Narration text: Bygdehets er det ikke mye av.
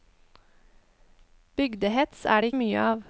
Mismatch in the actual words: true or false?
true